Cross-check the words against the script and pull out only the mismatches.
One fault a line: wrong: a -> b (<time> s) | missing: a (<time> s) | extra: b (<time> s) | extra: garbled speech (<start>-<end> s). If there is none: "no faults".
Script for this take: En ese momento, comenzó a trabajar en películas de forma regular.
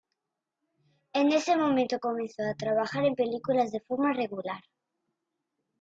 no faults